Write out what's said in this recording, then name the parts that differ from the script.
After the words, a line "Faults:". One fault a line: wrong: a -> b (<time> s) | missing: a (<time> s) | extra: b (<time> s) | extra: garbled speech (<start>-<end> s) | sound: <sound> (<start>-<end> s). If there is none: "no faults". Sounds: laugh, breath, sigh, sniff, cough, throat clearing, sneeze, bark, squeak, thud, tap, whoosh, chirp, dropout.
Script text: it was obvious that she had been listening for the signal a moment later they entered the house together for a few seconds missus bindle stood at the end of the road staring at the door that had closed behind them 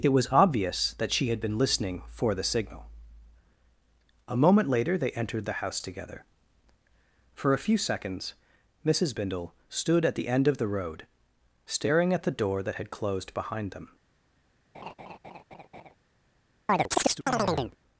it was obvious that she had been listening for the signal a moment later they entered the house together for a few seconds missus bindle stood at the end of the road staring at the door that had closed behind them
Faults:
sound: laugh (14.7-16.0 s)
sound: chirp (16.7-17.8 s)